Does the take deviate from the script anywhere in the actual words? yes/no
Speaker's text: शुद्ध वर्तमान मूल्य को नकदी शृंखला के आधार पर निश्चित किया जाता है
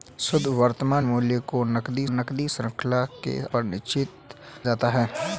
yes